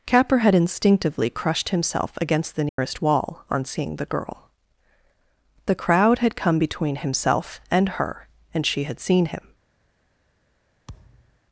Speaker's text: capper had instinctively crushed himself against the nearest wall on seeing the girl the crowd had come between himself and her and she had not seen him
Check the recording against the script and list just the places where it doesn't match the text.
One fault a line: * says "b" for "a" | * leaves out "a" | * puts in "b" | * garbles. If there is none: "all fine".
* leaves out "not"